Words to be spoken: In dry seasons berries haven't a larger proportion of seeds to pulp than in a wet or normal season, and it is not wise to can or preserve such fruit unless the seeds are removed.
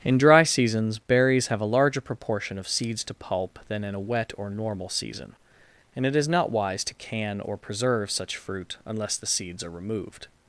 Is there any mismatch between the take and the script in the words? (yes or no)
yes